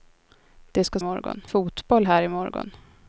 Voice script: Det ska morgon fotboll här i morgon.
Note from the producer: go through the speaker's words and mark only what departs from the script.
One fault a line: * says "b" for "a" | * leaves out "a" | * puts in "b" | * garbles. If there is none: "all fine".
all fine